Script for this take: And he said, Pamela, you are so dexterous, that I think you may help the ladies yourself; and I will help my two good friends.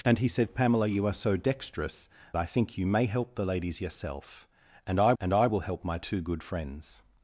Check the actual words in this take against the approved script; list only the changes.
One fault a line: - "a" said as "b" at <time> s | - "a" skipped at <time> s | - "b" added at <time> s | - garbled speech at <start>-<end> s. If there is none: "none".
- "that" skipped at 2.1 s
- "and I" added at 5.2 s